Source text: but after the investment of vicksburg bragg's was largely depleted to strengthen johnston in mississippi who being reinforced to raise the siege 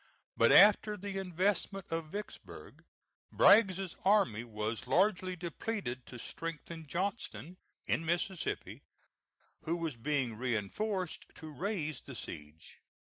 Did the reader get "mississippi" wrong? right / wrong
right